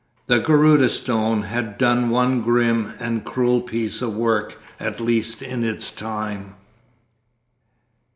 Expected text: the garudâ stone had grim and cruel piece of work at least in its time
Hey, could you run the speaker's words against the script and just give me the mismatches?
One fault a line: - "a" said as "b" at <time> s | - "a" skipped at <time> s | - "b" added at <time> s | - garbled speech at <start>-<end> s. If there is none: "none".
- "done one" added at 1.8 s